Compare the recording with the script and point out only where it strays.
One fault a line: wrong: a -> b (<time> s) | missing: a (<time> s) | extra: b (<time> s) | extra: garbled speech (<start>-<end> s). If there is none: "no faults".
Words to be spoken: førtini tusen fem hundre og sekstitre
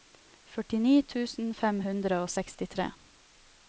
no faults